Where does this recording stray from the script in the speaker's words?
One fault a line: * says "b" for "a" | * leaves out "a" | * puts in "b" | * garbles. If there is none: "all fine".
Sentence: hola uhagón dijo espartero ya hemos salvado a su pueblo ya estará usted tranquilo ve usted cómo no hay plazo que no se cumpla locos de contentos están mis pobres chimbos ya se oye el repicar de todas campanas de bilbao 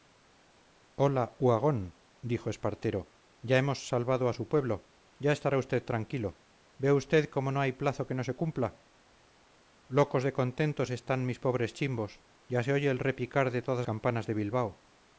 all fine